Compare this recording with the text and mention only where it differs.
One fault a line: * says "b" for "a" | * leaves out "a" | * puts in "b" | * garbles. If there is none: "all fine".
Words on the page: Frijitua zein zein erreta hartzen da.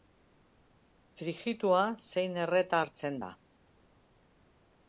* leaves out "zein"